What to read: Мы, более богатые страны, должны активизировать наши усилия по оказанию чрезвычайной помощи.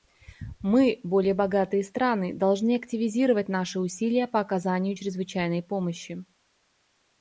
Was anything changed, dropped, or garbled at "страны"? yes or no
no